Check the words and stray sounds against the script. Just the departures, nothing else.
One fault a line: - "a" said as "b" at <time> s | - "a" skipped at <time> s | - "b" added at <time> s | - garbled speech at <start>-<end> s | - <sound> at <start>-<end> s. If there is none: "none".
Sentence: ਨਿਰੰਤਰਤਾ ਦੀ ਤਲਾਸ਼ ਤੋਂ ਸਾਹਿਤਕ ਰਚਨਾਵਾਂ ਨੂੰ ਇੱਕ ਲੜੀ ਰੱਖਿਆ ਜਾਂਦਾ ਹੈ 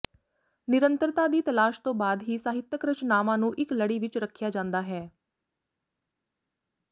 - "ਬਾਅਦ ਹੀ" added at 1.9 s
- "ਵਿੱਚ" added at 4.0 s